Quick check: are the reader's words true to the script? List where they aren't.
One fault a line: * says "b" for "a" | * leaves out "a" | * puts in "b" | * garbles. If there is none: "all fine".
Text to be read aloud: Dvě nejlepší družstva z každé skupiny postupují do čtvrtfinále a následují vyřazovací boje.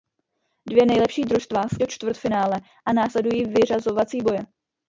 * leaves out "každé skupiny postupují"